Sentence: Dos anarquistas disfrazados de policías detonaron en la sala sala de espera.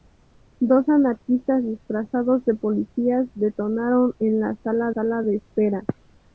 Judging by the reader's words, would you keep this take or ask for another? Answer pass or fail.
pass